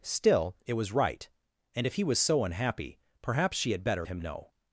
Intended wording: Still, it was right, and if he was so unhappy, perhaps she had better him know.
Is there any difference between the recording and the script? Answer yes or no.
no